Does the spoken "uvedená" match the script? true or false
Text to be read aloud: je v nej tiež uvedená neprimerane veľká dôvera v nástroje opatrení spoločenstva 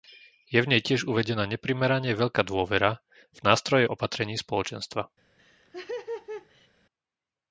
true